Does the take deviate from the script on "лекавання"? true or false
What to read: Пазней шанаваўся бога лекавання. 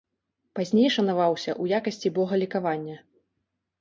false